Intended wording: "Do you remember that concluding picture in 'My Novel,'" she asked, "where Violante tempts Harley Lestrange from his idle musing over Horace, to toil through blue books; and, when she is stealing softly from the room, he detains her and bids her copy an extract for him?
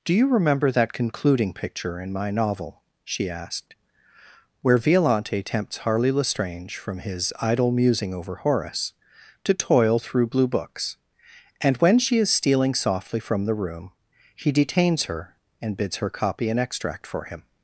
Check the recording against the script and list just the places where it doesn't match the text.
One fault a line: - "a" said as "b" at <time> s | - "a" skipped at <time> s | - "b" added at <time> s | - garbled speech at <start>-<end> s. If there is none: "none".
none